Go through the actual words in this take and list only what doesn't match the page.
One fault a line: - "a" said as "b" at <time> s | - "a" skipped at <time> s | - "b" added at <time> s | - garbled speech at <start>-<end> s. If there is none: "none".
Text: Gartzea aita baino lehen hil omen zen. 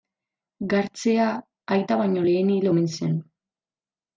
none